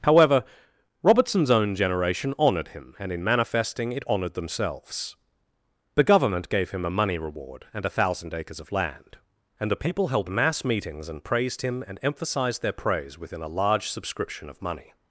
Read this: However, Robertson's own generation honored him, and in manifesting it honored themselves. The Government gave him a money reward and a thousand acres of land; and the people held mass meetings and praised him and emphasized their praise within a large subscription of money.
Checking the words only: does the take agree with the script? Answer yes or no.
yes